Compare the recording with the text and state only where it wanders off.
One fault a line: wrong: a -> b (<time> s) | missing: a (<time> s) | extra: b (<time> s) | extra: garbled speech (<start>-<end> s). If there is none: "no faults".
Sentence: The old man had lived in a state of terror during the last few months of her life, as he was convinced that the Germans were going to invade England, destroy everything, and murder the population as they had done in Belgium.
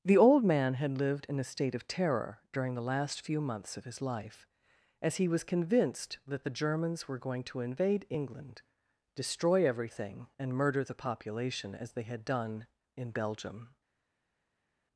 wrong: her -> his (3.9 s)